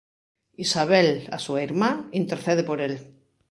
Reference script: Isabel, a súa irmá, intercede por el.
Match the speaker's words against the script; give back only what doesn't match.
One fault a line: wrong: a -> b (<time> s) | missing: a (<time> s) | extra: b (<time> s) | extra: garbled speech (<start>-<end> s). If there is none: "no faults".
no faults